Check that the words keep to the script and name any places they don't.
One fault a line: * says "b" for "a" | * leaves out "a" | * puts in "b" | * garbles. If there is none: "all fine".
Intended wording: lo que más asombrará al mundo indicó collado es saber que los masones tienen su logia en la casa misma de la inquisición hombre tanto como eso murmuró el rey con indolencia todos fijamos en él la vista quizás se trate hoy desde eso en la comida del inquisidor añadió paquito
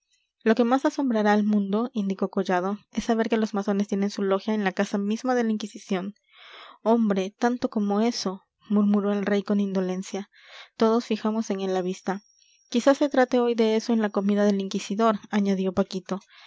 * says "de" for "desde"